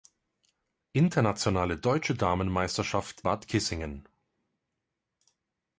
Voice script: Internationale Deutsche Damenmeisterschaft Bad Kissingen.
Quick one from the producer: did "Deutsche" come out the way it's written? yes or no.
yes